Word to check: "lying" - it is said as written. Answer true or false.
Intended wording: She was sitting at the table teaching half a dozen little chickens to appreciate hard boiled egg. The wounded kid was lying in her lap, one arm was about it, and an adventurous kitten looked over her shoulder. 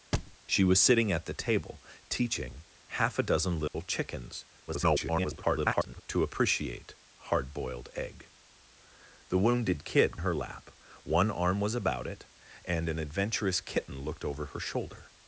false